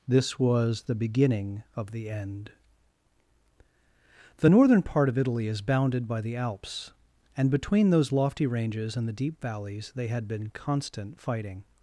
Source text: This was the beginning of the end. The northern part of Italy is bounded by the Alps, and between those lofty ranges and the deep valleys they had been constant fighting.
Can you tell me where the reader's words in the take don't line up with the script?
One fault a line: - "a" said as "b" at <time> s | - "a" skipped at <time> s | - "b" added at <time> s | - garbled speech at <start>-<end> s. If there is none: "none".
none